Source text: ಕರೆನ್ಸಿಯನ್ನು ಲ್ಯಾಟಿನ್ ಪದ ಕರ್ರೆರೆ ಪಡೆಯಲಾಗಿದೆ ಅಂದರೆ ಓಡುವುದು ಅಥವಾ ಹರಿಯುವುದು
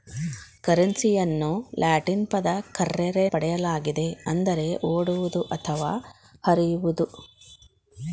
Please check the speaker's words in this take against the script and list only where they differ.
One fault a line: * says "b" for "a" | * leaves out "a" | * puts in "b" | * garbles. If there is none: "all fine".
all fine